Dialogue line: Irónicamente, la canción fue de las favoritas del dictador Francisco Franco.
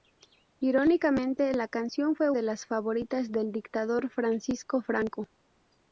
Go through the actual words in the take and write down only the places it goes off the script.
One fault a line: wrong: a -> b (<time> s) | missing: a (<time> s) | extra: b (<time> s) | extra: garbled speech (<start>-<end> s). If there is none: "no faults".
no faults